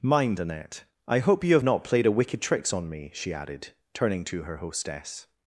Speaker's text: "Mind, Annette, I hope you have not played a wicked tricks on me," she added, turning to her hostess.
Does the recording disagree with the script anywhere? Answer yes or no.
no